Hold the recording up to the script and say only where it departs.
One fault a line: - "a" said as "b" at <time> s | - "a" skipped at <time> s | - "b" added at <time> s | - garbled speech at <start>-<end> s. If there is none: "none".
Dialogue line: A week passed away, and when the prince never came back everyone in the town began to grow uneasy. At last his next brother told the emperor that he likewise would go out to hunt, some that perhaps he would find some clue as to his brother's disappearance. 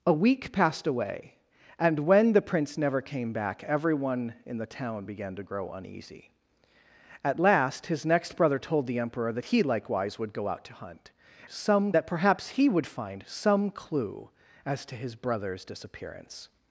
none